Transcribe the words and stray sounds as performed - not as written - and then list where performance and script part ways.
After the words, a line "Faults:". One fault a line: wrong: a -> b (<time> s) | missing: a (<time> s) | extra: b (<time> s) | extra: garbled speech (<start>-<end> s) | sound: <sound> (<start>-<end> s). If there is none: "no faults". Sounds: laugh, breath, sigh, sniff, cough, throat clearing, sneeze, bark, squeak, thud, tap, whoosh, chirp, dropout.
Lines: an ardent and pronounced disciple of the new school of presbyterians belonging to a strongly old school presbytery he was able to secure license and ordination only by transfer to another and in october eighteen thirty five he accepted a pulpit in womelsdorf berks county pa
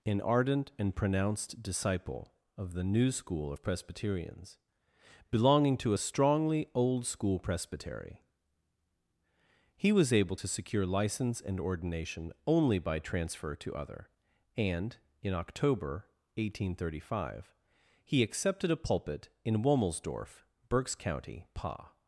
an ardent and pronounced disciple of the new school of presbyterians belonging to a strongly old school presbytery he was able to secure license and ordination only by transfer to other and in october eighteen thirty five he accepted a pulpit in womelsdorf berks county pa
Faults:
wrong: another -> other (13.8 s)